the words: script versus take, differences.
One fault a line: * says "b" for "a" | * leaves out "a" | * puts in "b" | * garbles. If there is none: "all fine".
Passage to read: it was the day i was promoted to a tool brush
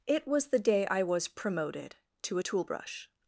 all fine